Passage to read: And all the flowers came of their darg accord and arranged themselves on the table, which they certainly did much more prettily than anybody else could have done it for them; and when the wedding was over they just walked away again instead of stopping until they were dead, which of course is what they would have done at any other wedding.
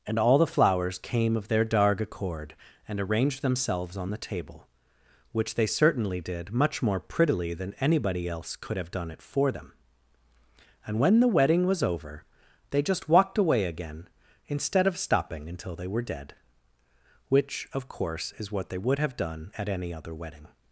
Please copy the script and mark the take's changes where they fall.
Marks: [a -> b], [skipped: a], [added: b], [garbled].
And all the flowers came of their darg accord and arranged themselves on the table, which they certainly did much more prettily than anybody else could have done it for them; and when the wedding was over they just walked away again instead of stopping until they were dead, which of course is what they would have done at any other wedding.